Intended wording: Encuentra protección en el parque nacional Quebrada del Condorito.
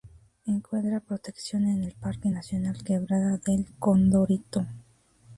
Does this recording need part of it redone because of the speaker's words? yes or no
no